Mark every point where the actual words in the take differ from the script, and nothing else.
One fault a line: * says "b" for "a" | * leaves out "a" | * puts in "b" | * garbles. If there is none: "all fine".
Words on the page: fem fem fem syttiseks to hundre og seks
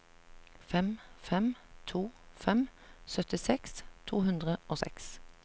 * puts in "to"